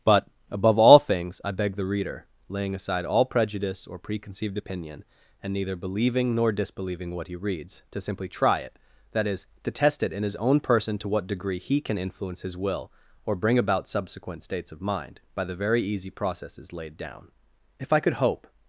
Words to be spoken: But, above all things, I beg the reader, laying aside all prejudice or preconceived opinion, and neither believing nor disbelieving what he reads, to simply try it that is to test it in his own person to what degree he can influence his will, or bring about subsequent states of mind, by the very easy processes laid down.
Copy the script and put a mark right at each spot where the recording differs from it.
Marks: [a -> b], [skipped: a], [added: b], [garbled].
But, above all things, I beg the reader, laying aside all prejudice or preconceived opinion, and neither believing nor disbelieving what he reads, to simply try it that is to test it in his own person to what degree he can influence his will, or bring about subsequent states of mind, by the very easy processes laid down. [added: If I could hope]